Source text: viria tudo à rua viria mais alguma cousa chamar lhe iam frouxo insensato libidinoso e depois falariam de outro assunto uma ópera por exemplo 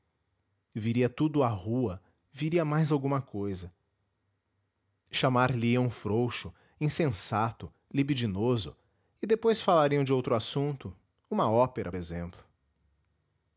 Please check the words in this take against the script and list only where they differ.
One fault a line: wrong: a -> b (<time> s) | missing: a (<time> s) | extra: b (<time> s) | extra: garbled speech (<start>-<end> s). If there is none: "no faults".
missing: por (11.9 s)